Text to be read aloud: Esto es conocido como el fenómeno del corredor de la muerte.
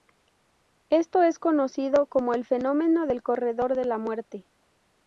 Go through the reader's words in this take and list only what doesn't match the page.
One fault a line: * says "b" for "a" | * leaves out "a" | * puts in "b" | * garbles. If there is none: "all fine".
all fine